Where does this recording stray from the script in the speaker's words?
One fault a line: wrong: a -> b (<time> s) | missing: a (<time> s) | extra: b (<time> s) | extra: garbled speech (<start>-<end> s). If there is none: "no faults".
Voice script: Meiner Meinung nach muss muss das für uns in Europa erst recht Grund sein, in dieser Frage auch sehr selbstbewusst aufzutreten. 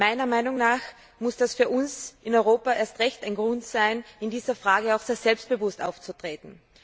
missing: muss (1.4 s)
extra: ein (3.3 s)